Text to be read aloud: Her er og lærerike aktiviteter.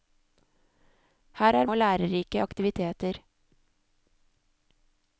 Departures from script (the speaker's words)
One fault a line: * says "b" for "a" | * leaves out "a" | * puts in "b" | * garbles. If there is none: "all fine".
all fine